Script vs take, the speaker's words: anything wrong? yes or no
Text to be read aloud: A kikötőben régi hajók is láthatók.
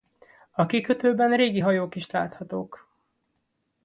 no